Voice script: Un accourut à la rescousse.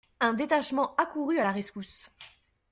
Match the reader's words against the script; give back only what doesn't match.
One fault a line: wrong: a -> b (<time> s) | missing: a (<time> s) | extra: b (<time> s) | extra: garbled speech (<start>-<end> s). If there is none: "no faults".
extra: détachement (0.3 s)